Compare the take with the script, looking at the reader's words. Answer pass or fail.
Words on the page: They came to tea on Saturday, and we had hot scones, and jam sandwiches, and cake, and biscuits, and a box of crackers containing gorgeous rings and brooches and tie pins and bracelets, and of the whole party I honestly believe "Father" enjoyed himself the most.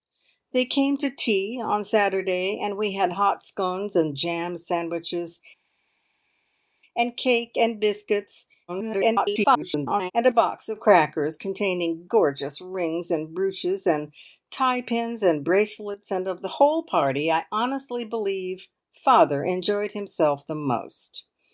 fail